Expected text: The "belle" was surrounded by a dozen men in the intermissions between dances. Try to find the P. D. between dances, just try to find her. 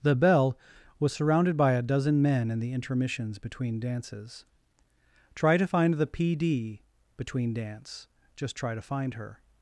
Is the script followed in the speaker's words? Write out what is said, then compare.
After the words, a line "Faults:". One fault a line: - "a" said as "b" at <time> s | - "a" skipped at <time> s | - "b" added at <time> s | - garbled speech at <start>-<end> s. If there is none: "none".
The "belle" was surrounded by a dozen men in the intermissions between dances. Try to find the P. D. between dance, just try to find her.
Faults:
- "dances" said as "dance" at 7.5 s